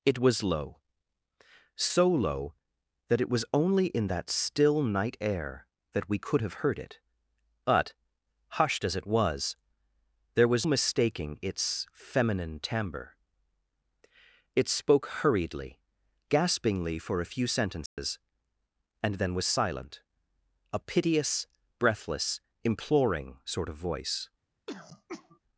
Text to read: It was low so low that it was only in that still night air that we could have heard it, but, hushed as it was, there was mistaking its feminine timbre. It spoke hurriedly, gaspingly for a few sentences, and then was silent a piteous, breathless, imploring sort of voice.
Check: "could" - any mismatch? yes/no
no